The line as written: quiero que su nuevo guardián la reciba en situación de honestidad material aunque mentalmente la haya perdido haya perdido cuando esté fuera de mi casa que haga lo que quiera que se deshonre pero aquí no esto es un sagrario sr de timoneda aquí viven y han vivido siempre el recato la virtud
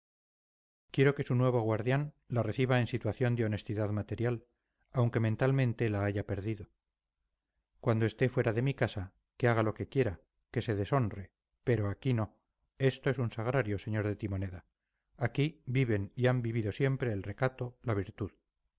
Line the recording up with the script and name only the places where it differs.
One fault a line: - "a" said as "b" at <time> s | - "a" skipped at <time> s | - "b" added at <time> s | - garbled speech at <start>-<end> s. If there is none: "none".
- "haya perdido" skipped at 6.7 s